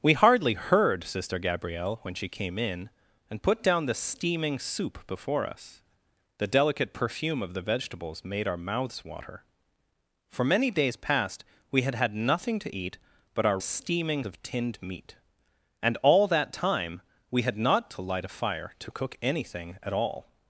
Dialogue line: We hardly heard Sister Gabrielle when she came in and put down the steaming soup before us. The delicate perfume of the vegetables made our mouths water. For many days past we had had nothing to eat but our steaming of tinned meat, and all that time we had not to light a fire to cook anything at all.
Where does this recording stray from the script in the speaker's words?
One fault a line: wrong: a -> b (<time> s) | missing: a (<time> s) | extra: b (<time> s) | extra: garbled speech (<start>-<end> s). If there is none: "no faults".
no faults